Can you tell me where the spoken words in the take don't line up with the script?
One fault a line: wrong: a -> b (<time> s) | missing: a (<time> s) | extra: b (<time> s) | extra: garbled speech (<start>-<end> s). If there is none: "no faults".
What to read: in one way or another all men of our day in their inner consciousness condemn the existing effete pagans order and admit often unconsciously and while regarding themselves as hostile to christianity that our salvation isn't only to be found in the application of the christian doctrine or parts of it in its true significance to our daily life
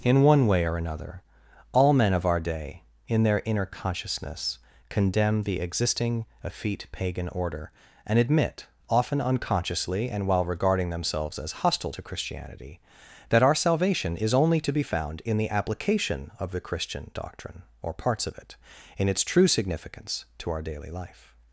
wrong: pagans -> pagan (6.9 s)
wrong: isn't -> is (14.2 s)